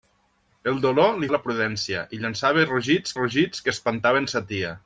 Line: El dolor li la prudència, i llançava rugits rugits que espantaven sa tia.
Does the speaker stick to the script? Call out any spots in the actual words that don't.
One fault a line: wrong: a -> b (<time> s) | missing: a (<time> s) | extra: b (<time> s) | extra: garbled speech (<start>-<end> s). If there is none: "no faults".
no faults